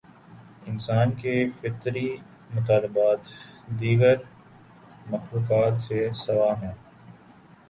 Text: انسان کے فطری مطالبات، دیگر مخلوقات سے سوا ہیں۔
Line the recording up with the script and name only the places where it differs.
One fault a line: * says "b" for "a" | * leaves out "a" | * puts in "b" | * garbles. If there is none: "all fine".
all fine